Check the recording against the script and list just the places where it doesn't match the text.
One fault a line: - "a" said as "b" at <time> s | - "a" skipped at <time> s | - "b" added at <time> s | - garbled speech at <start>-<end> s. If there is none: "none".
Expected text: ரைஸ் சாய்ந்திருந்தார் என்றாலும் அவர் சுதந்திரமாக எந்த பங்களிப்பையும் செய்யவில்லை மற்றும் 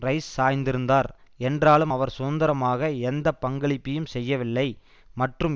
none